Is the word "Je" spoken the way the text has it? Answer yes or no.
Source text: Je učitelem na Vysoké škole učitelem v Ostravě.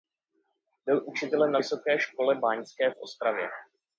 no